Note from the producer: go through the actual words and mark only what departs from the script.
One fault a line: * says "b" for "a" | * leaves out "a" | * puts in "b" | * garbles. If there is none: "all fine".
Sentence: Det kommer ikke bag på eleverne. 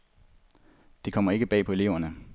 all fine